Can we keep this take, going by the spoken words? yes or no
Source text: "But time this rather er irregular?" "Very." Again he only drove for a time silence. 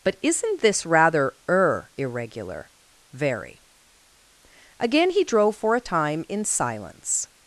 no